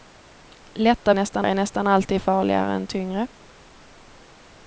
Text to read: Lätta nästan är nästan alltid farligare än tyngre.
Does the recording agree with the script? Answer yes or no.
yes